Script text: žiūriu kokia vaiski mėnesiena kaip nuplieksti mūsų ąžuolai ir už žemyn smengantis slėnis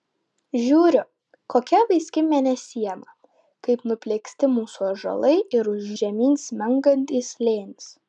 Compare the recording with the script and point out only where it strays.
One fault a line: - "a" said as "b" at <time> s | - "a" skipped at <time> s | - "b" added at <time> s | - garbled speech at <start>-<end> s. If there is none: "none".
none